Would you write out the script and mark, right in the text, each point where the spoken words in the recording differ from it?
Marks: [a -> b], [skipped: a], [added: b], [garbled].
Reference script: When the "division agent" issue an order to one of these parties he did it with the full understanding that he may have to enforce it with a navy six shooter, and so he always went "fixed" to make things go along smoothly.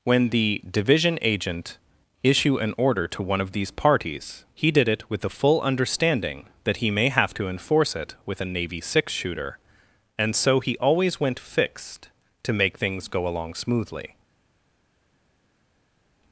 When the "division agent" issue an order to one of these parties he did it with the full understanding that he may have to enforce it with a navy six shooter, and so he always went "fixed" to make things go along smoothly.